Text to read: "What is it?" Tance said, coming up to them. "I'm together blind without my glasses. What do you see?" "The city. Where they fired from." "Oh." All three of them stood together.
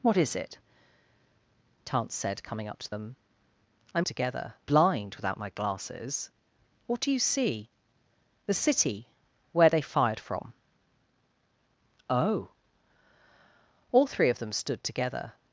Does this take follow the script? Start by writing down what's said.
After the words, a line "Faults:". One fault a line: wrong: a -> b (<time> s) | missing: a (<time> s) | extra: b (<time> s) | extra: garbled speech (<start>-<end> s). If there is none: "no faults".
"What is it?" Tance said, coming up to them. "I'm together blind without my glasses. What do you see?" "The city. Where they fired from." "Oh." All three of them stood together.
Faults:
no faults